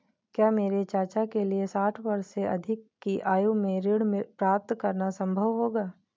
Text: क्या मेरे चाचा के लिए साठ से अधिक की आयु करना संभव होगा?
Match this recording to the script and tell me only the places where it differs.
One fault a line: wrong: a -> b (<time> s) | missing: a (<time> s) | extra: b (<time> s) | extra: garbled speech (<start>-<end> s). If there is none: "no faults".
extra: वर्ष (2.0 s)
extra: में ऋण प्राप्त (3.5 s)